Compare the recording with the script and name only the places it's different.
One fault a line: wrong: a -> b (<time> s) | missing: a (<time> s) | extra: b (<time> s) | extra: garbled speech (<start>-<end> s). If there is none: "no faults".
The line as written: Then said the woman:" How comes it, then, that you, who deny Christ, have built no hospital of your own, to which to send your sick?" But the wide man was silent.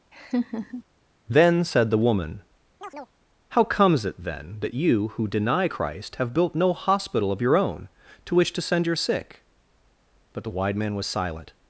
no faults